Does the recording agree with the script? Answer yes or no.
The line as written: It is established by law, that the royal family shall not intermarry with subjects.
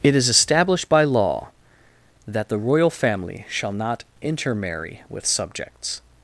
yes